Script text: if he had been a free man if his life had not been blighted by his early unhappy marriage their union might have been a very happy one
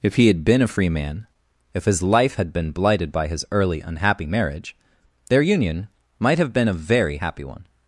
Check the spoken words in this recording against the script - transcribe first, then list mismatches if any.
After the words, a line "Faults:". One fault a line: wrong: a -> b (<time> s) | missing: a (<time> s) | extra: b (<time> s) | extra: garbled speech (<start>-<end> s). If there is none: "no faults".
if he had been a free man if his life had been blighted by his early unhappy marriage their union might have been a very happy one
Faults:
missing: not (2.5 s)